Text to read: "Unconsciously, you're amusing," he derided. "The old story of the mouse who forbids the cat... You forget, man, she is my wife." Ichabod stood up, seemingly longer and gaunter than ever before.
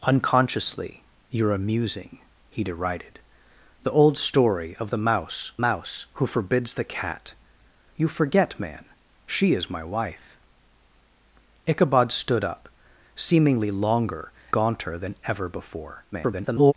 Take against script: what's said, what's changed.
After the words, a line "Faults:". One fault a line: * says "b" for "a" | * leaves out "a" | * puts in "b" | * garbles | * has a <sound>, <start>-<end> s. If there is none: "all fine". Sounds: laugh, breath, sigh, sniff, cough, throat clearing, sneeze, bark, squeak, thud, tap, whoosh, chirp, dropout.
"Unconsciously, you're amusing," he derided. "The old story of the mouse mouse who forbids the cat... You forget, man, she is my wife." Ichabod stood up, seemingly longer gaunter than ever before. [garbled]
Faults:
* puts in "mouse"
* leaves out "and"
* garbles